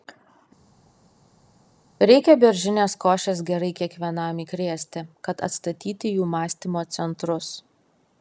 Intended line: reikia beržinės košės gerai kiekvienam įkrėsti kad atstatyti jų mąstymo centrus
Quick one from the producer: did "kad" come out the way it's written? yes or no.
yes